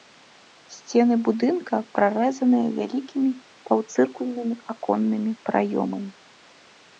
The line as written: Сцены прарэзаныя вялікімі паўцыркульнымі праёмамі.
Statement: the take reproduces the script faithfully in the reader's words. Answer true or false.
false